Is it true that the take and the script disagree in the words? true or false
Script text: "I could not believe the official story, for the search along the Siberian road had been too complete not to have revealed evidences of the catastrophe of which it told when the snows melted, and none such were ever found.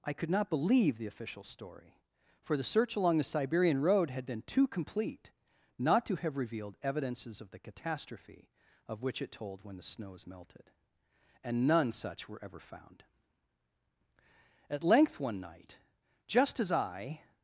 true